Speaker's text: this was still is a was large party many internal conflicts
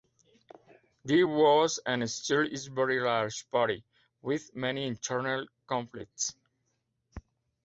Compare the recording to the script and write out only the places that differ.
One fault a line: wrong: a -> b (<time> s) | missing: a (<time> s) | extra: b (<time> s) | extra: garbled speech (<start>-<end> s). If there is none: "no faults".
extra: and (1.9 s)
wrong: was -> very (2.7 s)
extra: with (4.2 s)